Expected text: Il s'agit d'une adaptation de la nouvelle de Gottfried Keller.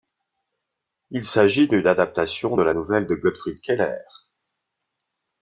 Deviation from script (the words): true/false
false